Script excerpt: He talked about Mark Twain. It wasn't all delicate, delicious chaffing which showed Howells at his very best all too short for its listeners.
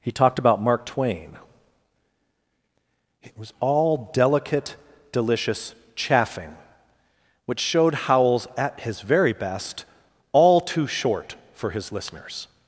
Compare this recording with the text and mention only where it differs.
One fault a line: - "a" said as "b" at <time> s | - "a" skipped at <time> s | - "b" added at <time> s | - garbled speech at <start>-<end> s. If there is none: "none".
- "wasn't" said as "was" at 3.4 s
- "its" said as "his" at 11.7 s